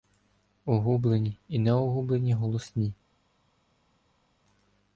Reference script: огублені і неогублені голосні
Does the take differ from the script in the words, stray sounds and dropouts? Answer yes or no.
no